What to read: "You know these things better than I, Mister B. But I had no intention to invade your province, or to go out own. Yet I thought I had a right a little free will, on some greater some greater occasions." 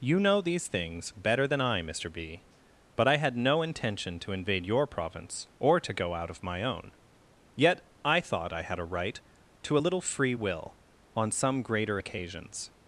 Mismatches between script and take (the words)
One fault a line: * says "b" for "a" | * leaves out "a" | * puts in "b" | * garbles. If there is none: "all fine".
* puts in "of my"
* puts in "to"
* leaves out "some greater"